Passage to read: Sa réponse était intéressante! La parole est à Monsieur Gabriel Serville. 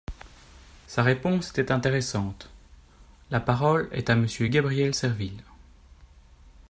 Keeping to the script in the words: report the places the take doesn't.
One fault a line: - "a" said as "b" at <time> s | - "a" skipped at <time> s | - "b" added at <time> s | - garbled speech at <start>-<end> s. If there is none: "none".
none